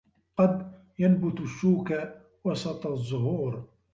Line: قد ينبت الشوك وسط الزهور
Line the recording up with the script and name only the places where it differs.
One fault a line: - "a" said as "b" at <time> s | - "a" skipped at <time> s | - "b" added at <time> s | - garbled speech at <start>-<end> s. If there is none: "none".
none